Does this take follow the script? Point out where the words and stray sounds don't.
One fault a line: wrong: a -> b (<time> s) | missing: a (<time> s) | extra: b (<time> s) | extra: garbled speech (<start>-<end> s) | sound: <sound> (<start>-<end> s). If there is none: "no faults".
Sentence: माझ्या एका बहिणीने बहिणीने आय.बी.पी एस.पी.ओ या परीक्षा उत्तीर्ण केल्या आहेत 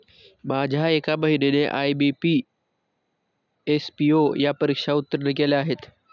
missing: बहिणीने (1.6 s)